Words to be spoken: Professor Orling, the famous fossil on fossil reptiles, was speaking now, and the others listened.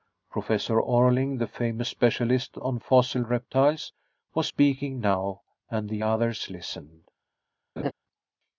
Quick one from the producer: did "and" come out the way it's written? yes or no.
yes